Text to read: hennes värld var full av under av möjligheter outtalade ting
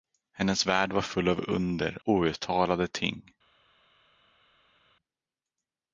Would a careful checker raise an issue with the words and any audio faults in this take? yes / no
yes